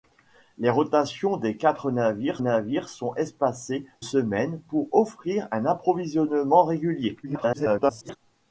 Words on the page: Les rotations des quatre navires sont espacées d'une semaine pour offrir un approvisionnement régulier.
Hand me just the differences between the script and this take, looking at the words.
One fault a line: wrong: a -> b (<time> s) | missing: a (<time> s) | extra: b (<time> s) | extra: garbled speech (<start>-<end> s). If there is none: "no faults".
extra: navires (2.4 s)
missing: d'une (3.8 s)
extra: garbled speech (7.2-8.2 s)